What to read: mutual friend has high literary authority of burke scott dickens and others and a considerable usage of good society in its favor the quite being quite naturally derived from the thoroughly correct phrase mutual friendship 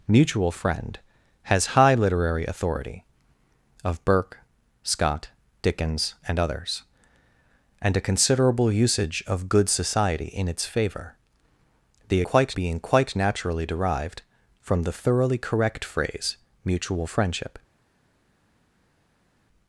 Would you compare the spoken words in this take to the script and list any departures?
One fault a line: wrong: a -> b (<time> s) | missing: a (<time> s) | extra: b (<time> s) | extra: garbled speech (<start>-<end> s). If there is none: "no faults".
no faults